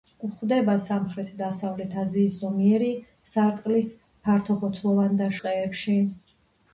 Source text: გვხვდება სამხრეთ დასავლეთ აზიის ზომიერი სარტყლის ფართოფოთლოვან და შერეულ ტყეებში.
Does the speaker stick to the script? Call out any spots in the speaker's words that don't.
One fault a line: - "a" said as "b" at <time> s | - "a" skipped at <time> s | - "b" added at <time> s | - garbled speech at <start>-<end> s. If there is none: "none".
- "შერეულ" skipped at 5.3 s